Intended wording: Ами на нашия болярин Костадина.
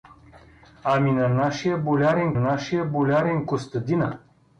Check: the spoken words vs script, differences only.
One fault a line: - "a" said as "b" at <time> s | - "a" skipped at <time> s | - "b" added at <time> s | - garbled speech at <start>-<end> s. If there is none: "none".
- "нашия болярин" added at 2.3 s